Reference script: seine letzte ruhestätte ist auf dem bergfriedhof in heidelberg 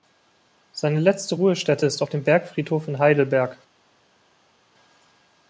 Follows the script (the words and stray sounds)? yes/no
yes